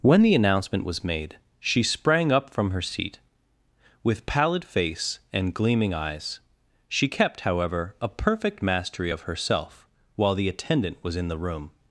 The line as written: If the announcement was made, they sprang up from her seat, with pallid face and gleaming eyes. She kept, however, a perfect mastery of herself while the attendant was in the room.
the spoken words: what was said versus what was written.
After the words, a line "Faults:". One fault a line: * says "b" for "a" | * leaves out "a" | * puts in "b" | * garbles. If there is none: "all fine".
When the announcement was made, she sprang up from her seat, with pallid face and gleaming eyes. She kept, however, a perfect mastery of herself while the attendant was in the room.
Faults:
* says "When" for "If"
* says "she" for "they"